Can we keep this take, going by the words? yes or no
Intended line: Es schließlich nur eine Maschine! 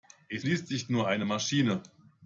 yes